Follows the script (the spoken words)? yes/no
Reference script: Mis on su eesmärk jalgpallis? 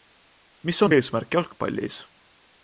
no